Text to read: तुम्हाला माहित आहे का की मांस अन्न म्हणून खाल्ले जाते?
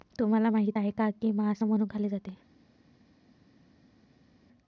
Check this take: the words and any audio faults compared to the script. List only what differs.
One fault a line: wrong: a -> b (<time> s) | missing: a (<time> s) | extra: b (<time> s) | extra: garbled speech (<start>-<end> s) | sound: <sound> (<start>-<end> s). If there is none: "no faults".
missing: अन्न (1.6 s)